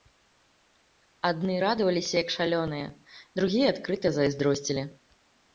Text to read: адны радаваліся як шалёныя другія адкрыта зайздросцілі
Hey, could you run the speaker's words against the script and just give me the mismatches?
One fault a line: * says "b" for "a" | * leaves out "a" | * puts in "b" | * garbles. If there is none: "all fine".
all fine